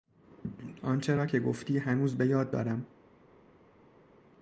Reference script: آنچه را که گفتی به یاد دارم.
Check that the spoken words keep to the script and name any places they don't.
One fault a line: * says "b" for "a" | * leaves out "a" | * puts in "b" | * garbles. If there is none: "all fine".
* puts in "هنوز"